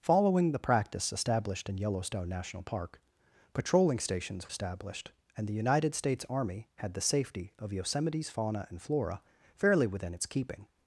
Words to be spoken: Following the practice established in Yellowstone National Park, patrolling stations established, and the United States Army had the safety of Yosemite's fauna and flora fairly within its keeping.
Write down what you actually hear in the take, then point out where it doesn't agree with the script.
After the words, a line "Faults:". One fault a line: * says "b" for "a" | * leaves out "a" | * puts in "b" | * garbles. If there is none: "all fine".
Following the practice established in Yellowstone National Park, patrolling stations established, and the United States Army had the safety of Yosemite's fauna and flora fairly within its keeping.
Faults:
all fine